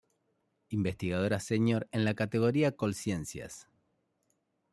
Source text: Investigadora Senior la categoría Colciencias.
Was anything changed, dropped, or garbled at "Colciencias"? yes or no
no